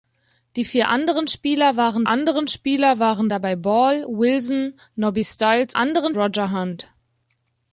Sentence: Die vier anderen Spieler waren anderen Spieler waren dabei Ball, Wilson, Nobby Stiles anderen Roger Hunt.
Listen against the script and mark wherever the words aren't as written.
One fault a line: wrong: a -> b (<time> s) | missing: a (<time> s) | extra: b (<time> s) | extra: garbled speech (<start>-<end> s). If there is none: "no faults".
no faults